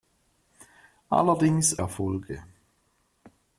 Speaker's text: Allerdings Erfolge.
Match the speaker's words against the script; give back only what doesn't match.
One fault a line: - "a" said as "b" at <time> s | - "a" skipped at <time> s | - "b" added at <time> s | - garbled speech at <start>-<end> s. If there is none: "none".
none